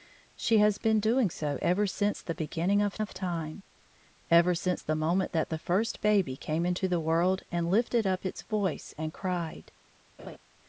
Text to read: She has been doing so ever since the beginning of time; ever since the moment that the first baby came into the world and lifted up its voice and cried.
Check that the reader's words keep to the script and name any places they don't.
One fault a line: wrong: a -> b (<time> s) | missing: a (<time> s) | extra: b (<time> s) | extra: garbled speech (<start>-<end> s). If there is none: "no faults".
extra: of (3.0 s)